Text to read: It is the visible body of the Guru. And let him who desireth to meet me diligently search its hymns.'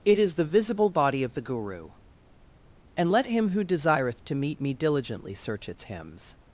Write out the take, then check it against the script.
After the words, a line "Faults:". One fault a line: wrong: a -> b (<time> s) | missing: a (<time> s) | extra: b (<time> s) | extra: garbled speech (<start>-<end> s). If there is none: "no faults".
It is the visible body of the Guru. And let him who desireth to meet me diligently search its hymns.'
Faults:
no faults